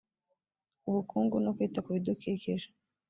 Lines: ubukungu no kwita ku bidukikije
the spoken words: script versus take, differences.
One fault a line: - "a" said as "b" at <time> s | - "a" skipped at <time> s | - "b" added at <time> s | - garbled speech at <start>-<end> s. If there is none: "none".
none